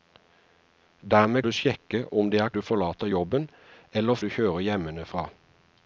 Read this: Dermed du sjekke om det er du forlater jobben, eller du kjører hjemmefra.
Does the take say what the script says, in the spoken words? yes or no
yes